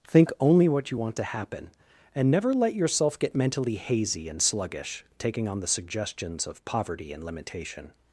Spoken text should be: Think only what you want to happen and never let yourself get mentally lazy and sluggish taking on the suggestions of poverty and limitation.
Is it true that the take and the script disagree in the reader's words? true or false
true